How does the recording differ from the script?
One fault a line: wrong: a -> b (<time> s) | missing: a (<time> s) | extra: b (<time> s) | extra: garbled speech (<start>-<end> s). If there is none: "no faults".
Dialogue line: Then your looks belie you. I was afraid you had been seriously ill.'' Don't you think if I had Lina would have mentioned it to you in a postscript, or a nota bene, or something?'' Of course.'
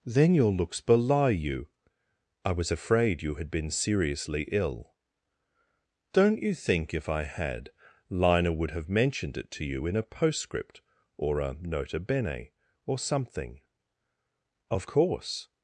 no faults